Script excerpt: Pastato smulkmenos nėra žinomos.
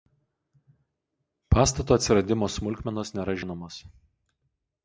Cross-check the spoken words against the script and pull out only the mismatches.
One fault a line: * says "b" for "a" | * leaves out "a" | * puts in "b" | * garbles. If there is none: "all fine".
* puts in "atsiradimo"